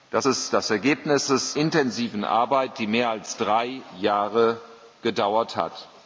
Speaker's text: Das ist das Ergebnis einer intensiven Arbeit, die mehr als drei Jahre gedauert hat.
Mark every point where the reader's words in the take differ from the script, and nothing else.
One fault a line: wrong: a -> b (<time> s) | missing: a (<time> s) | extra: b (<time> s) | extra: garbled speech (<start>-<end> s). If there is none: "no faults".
wrong: einer -> ist (1.3 s)